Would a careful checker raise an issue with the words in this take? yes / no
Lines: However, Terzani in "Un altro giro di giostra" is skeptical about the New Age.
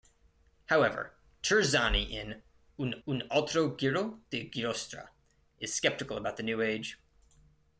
yes